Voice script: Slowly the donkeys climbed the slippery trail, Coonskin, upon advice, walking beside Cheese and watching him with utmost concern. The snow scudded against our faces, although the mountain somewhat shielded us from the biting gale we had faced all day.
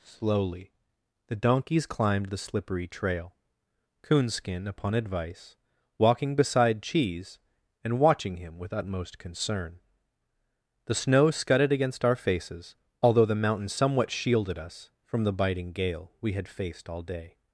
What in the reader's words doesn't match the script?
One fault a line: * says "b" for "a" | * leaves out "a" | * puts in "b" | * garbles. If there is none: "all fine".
all fine